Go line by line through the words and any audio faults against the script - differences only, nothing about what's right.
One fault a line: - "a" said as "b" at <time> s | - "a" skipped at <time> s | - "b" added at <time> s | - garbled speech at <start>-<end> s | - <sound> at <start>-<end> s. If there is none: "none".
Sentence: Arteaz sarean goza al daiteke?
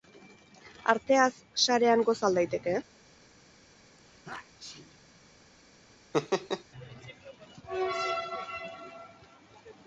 - sneeze at 4.0-5.0 s
- laugh at 6.1-6.6 s